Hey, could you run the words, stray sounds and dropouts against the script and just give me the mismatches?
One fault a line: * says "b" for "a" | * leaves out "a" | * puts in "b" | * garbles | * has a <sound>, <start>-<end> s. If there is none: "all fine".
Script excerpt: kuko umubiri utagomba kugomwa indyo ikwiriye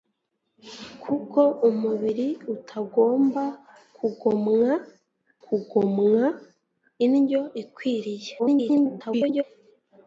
* puts in "kugomwa"
* garbles